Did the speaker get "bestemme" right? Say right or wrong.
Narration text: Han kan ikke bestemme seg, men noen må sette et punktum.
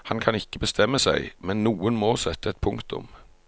right